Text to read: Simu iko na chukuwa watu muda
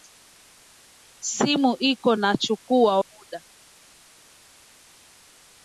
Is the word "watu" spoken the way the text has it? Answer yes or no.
no